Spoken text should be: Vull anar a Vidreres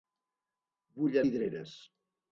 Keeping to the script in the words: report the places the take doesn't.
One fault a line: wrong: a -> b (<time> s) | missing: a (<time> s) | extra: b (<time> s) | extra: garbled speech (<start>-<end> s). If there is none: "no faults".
missing: anar a (1.2 s)